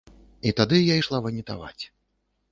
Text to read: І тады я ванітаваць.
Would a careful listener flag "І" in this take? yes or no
no